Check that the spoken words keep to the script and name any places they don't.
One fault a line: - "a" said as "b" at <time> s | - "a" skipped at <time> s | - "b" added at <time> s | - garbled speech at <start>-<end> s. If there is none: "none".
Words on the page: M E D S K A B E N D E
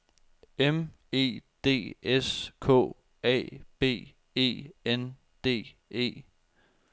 none